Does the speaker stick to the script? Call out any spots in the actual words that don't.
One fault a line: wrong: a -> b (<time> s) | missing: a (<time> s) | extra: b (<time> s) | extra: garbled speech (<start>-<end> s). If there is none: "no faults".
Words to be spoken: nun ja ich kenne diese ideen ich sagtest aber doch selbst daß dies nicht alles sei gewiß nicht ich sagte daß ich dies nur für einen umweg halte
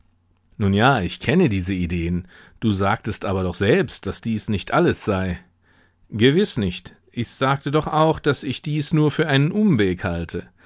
wrong: ich -> du (2.6 s)
extra: doch auch (7.7 s)